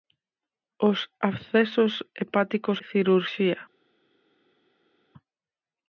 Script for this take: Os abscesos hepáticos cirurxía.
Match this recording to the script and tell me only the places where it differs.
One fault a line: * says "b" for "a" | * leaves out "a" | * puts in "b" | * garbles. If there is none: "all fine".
all fine